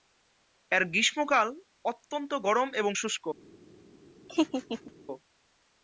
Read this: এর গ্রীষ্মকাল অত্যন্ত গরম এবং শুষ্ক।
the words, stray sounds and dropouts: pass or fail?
fail